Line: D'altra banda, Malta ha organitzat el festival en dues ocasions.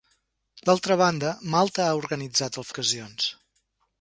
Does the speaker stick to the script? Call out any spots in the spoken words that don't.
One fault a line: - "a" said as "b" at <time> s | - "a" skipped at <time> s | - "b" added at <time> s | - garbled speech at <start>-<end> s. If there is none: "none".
- "festival en dues" skipped at 2.7 s